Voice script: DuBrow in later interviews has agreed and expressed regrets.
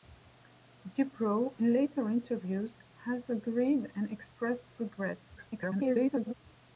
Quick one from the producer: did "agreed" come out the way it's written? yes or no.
yes